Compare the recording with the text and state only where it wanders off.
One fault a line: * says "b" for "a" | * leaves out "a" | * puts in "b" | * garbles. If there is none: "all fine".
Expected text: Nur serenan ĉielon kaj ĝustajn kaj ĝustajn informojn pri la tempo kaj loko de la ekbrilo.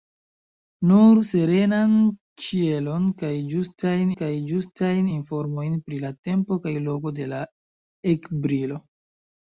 all fine